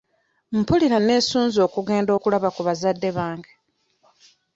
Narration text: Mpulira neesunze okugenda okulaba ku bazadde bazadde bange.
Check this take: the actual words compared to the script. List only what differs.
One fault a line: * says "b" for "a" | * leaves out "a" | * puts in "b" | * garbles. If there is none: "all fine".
* leaves out "bazadde"